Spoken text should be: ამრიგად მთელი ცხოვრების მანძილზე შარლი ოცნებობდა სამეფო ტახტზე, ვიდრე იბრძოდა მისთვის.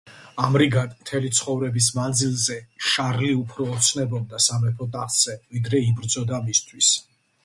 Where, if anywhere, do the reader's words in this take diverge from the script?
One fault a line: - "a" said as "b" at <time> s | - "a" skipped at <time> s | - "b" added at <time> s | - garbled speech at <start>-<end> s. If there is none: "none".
- "უფრო" added at 3.4 s